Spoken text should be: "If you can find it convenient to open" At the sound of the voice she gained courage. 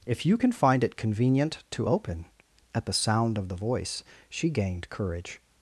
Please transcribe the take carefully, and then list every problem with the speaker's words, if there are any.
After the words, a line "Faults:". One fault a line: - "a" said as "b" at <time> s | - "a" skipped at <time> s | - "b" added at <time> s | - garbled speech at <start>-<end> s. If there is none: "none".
"If you can find it convenient to open" At the sound of the voice she gained courage.
Faults:
none